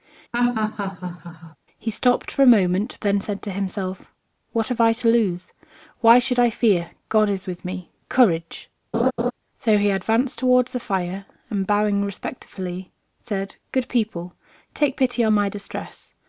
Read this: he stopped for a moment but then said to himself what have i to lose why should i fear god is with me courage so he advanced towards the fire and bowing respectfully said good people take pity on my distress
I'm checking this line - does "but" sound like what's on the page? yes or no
no